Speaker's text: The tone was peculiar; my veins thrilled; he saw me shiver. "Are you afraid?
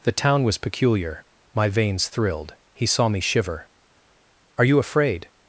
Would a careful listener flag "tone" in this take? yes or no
yes